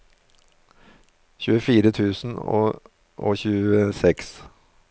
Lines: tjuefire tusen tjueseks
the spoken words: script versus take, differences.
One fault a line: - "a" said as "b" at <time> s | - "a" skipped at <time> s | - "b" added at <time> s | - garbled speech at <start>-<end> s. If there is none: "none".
- "og" added at 2.4 s